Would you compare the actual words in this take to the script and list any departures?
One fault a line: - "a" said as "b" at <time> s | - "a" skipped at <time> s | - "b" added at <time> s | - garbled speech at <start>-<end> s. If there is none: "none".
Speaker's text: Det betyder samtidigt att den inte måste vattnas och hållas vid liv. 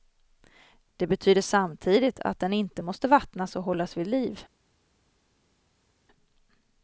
none